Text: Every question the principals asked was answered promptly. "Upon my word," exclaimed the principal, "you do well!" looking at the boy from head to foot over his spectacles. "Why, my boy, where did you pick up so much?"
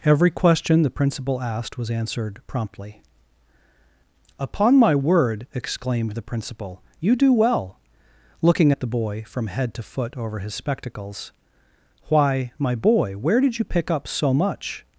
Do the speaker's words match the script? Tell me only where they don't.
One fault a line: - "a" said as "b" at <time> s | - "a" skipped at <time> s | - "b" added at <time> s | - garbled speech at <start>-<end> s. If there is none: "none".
- "principals" said as "principal" at 0.9 s